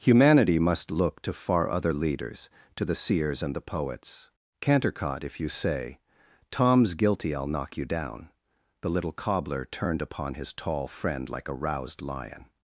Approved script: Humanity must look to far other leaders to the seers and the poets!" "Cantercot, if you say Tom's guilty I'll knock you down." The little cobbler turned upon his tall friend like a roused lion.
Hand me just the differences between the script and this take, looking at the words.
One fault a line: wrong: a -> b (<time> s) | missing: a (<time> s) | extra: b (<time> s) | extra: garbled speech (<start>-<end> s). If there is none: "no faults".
no faults